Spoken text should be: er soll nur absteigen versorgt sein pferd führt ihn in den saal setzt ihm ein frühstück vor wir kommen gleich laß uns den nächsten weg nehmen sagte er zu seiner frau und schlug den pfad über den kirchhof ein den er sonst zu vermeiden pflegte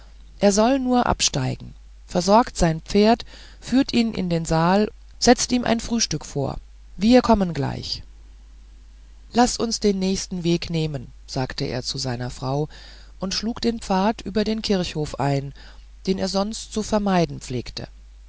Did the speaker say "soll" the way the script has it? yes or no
yes